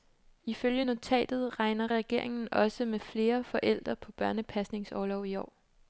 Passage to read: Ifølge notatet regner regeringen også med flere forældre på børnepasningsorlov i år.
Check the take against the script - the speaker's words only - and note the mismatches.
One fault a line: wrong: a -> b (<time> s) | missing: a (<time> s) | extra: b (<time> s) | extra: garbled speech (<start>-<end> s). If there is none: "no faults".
no faults